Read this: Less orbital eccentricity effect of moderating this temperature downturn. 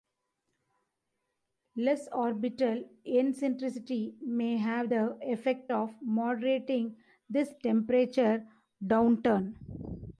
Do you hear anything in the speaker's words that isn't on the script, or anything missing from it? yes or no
yes